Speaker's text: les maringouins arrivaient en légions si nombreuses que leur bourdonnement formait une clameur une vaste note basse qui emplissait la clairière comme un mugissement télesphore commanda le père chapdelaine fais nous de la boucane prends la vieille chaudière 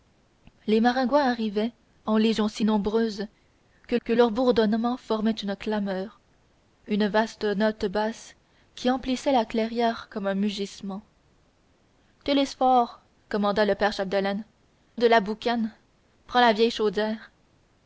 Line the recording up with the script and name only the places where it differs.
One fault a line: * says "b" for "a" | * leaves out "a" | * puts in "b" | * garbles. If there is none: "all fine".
* puts in "que"
* leaves out "fais nous"